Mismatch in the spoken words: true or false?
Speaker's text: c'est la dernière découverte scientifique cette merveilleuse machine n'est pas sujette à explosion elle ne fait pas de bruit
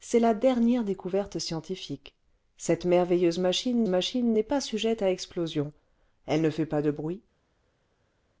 true